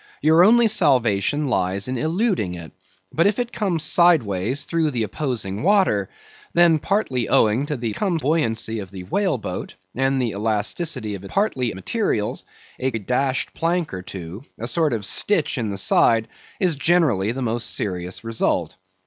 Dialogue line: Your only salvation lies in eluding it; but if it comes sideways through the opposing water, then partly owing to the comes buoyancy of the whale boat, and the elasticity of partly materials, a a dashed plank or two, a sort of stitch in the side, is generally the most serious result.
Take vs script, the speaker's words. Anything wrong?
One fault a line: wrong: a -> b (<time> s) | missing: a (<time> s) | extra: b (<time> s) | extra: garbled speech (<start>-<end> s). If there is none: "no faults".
no faults